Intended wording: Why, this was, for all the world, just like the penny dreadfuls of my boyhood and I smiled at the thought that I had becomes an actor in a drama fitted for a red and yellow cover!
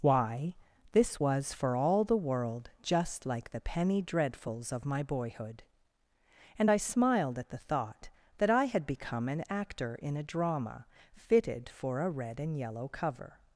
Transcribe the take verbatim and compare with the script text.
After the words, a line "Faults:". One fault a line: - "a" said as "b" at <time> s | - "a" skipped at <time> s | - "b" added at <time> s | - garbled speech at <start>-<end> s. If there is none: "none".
Why, this was, for all the world, just like the penny dreadfuls of my boyhood and I smiled at the thought that I had become an actor in a drama fitted for a red and yellow cover!
Faults:
- "becomes" said as "become" at 8.9 s